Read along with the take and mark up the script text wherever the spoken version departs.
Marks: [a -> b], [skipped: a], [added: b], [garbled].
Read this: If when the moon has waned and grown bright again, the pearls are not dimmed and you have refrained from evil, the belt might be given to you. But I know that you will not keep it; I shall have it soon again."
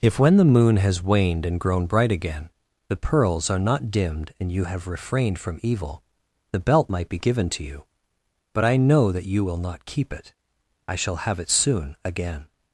If when the moon has waned and grown bright again, the pearls are not dimmed and you have refrained from evil, the belt might be given to you. But I know that you will not keep it; I shall have it soon again."